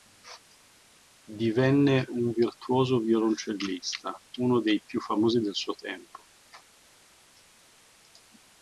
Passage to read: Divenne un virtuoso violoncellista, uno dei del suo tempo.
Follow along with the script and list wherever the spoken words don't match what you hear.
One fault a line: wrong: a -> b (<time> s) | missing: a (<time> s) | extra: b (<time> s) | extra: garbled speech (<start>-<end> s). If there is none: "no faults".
extra: più famosi (4.8 s)